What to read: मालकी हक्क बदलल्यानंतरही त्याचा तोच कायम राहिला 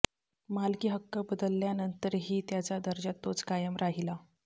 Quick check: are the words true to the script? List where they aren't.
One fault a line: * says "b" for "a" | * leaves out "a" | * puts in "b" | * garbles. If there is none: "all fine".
* puts in "दर्जा"